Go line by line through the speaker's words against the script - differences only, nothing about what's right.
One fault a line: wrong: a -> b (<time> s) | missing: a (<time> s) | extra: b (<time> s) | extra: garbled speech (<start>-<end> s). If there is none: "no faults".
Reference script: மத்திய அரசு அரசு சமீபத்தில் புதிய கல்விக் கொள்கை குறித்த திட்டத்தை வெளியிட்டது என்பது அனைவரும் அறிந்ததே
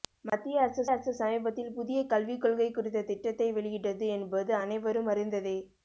no faults